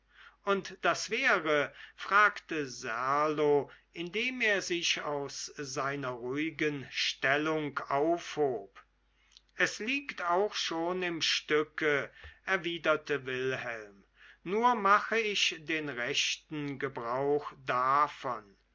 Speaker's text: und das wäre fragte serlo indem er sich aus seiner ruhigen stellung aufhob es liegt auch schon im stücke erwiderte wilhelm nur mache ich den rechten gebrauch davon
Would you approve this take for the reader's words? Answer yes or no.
yes